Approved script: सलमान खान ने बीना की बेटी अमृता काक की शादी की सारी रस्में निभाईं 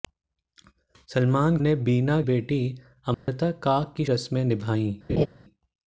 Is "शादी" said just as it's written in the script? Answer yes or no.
no